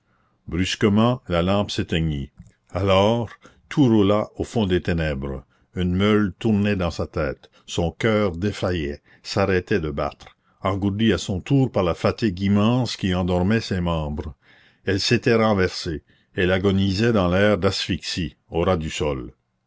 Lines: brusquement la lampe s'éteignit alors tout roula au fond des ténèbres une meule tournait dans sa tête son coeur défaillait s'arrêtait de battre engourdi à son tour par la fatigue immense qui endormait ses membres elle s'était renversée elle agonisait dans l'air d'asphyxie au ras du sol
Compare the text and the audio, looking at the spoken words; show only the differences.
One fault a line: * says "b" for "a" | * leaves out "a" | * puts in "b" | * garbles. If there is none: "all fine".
all fine